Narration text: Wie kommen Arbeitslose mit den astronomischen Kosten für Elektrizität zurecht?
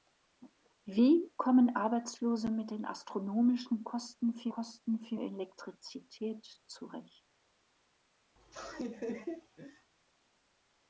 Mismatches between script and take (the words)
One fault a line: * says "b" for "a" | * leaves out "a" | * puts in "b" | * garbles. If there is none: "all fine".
* puts in "Kosten für"